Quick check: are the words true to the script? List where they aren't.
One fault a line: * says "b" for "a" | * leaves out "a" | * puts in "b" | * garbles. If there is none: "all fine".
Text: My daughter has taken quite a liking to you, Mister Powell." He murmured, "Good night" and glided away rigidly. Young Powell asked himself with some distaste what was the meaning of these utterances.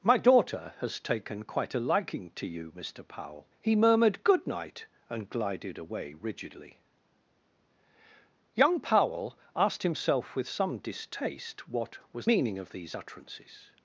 * leaves out "the"